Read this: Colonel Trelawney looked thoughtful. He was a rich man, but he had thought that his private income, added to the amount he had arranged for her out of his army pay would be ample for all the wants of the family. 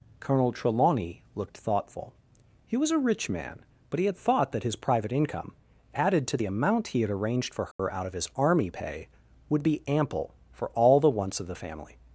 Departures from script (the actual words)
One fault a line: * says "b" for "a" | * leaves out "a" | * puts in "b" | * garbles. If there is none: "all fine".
all fine